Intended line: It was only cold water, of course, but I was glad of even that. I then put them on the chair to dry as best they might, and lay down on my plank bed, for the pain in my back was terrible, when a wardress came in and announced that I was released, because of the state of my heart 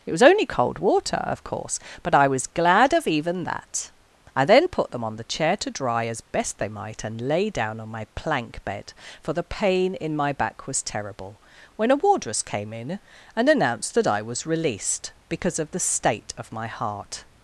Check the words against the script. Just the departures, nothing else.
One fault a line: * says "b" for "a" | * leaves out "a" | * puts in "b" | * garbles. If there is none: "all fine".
all fine